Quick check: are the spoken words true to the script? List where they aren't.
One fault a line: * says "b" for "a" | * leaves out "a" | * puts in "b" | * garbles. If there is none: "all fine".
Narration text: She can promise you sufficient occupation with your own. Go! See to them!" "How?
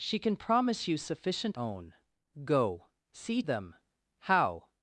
* leaves out "occupation with your"
* leaves out "to"